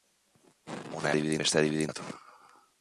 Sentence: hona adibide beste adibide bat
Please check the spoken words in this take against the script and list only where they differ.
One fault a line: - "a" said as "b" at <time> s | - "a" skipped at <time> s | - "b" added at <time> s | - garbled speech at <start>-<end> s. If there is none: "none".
none